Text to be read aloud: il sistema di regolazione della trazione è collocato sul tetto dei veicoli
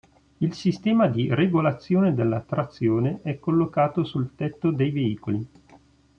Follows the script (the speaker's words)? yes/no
yes